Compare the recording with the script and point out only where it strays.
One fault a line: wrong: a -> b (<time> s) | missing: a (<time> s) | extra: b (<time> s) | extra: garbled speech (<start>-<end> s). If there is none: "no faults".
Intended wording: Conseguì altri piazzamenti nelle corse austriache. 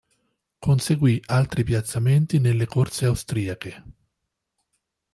no faults